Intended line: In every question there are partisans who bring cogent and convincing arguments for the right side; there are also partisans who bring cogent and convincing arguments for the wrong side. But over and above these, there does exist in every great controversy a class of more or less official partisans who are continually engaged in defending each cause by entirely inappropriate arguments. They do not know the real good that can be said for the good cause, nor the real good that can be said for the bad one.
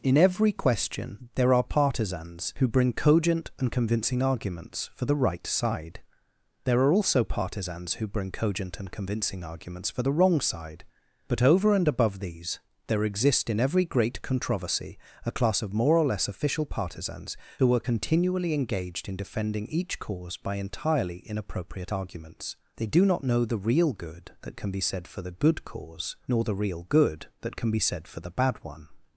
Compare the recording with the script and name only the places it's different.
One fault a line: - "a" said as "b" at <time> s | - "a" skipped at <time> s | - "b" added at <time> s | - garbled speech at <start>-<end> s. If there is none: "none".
- "does" skipped at 13.0 s